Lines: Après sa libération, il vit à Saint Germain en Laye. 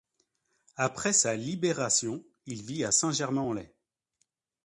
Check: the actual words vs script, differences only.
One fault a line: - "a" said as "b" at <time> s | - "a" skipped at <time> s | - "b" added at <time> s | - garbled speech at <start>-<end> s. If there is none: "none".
none